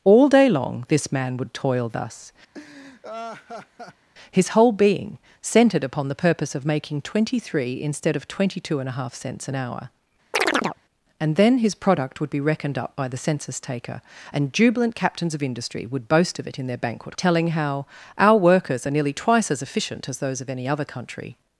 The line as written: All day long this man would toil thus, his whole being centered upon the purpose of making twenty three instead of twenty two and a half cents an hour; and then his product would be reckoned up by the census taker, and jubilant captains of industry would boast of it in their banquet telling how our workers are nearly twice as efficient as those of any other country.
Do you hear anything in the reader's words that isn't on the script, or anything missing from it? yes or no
no